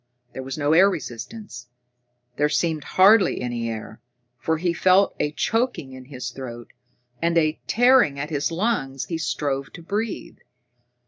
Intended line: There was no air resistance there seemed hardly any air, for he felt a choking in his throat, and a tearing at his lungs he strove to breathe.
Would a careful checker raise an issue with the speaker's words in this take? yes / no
no